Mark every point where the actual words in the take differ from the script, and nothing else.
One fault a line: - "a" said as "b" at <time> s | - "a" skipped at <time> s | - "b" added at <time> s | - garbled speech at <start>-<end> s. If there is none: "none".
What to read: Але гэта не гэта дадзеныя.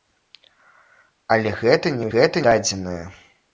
none